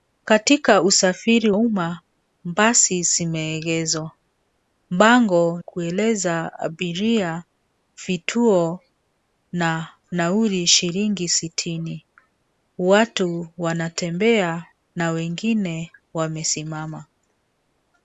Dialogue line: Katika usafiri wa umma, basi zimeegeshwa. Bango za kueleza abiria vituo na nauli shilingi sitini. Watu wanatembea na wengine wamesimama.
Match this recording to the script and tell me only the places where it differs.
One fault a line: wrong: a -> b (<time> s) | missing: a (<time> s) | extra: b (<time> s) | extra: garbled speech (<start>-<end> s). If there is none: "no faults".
missing: wa (1.5 s)
missing: za (5.6 s)